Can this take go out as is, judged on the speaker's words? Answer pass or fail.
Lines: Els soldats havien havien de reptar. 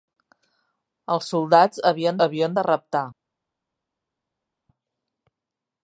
pass